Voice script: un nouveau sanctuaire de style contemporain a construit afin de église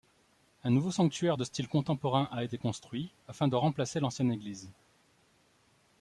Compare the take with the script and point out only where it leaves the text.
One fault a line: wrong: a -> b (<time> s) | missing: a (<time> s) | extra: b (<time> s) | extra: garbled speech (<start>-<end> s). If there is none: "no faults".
extra: été (2.4 s)
extra: remplacer l'ancienne (3.6 s)